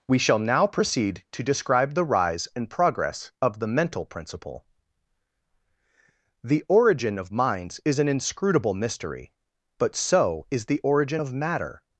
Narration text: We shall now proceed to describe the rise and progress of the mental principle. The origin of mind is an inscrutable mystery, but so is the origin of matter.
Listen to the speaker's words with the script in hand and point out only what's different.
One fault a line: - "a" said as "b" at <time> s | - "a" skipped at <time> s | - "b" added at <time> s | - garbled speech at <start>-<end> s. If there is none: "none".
- "mind" said as "minds" at 7.3 s